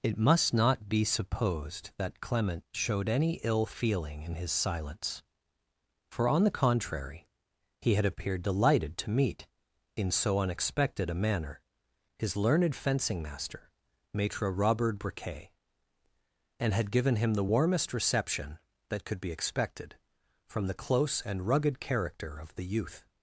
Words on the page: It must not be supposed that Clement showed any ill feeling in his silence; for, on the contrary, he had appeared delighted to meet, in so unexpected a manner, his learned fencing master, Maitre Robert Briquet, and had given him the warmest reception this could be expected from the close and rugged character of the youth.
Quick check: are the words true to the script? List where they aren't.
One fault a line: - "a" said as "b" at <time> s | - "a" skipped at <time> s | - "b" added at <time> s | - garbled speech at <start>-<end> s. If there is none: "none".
- "this" said as "that" at 18.9 s